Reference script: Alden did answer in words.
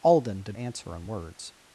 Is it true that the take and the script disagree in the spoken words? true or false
false